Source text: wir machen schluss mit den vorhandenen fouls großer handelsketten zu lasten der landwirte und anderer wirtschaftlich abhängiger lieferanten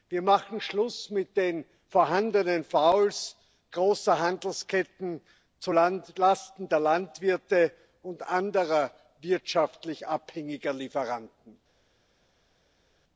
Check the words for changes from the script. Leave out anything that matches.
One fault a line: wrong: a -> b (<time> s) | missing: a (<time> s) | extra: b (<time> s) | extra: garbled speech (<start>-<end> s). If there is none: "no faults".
no faults